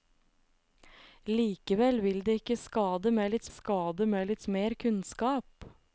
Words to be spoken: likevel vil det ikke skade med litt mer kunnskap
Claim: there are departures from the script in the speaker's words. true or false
true